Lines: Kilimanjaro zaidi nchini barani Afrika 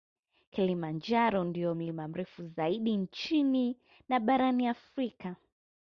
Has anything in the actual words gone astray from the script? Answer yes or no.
yes